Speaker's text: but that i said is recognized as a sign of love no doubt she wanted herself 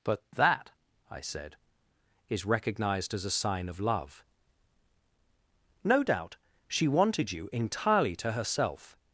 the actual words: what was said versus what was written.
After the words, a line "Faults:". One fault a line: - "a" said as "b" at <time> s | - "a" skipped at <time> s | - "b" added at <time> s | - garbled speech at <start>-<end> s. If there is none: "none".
but that i said is recognized as a sign of love no doubt she wanted you entirely to herself
Faults:
- "you entirely to" added at 7.3 s